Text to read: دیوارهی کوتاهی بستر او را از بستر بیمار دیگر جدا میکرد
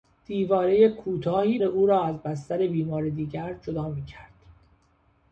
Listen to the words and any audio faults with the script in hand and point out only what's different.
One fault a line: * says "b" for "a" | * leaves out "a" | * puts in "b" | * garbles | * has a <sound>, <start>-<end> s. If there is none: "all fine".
* leaves out "بستر"